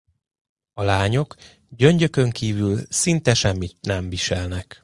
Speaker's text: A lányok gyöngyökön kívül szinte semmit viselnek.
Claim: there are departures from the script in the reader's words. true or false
true